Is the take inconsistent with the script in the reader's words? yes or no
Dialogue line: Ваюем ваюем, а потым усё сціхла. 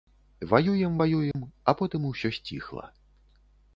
no